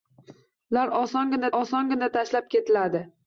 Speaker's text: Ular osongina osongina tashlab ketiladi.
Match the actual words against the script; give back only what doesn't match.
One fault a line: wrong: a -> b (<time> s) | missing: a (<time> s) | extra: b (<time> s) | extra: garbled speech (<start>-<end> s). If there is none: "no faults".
no faults